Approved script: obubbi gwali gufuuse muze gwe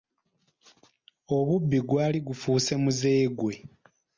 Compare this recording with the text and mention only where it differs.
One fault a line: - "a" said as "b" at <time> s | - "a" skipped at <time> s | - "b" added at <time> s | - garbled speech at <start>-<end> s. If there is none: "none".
none